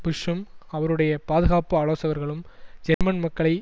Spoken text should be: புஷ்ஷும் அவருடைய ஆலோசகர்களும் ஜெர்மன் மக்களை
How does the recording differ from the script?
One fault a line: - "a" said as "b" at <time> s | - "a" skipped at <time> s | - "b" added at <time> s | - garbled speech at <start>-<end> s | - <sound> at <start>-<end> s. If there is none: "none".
- "பாதுகாப்பு" added at 1.2 s
- dropout at 2.9-3.0 s